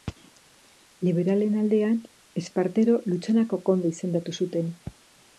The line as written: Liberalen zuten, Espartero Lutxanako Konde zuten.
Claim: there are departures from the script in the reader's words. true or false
true